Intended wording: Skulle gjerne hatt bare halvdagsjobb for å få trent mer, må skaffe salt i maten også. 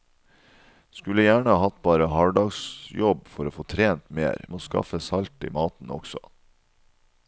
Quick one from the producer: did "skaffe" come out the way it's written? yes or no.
yes